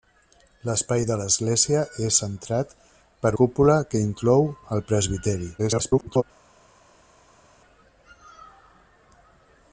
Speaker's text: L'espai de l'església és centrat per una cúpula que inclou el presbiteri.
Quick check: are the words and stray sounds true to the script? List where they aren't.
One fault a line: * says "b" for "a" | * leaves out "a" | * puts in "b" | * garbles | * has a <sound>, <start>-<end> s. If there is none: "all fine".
* leaves out "una"
* garbles